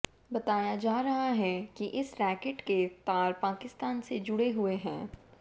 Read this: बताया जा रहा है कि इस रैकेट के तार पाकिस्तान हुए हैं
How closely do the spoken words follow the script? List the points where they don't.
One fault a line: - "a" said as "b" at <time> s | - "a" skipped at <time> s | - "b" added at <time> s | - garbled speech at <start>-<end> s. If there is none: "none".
- "से जुड़े" added at 4.0 s